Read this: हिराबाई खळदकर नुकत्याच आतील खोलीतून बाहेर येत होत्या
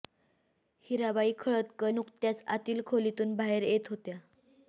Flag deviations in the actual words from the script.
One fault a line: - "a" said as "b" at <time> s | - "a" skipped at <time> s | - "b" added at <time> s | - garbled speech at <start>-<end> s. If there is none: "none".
none